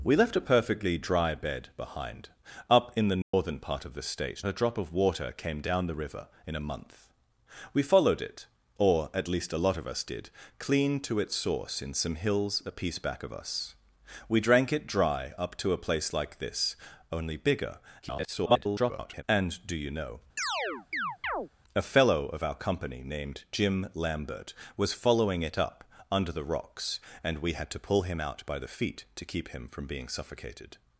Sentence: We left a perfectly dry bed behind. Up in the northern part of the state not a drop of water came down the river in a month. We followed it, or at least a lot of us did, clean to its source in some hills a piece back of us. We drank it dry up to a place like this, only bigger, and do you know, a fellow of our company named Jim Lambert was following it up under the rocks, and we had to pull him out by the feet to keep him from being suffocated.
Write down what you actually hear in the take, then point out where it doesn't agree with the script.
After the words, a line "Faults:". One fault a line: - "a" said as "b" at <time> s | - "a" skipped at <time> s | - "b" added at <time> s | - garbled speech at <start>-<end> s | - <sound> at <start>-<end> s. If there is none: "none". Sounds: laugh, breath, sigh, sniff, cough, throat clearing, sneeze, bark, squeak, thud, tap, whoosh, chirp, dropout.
We left a perfectly dry bed behind. Up in the northern part of the state a drop of water came down the river in a month. We followed it, or at least a lot of us did, clean to its source in some hills a piece back of us. We drank it dry up to a place like this, only bigger, [garbled] and do you know, a fellow of our company named Jim Lambert was following it up under the rocks, and we had to pull him out by the feet to keep him from being suffocated.
Faults:
- dropout at 3.2-3.3 s
- "not" skipped at 4.4 s
- garbled speech at 18.0-19.2 s
- chirp at 20.4-21.5 s